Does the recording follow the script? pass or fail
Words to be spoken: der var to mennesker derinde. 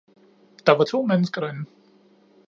pass